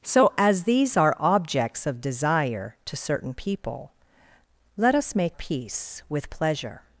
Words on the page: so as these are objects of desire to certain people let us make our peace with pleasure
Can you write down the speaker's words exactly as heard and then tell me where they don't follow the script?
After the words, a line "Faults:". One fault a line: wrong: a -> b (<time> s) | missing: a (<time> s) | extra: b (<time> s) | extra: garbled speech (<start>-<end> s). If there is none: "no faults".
so as these are objects of desire to certain people let us make peace with pleasure
Faults:
missing: our (5.4 s)